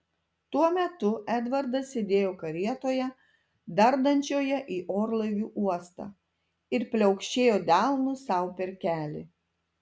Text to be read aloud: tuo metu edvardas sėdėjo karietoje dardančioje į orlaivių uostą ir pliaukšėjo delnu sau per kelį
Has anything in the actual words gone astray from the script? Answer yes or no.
no